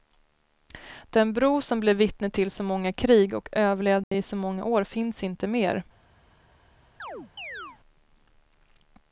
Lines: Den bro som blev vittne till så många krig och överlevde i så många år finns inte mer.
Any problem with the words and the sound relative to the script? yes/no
yes